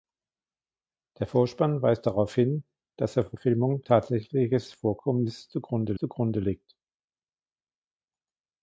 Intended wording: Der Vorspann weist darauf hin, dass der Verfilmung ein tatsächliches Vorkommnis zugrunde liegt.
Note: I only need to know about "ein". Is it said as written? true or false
false